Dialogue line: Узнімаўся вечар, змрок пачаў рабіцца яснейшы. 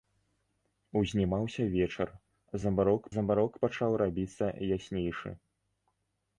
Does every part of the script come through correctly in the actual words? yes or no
no